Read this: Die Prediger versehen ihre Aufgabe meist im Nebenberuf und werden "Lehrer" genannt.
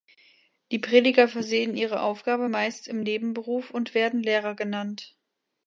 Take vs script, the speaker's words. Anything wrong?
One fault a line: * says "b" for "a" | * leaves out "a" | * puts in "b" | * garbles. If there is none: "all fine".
all fine